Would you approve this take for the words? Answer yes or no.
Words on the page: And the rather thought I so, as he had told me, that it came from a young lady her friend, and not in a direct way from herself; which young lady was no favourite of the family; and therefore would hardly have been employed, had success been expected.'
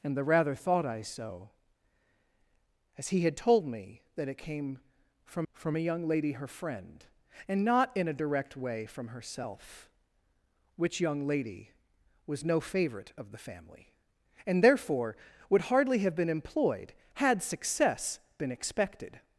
no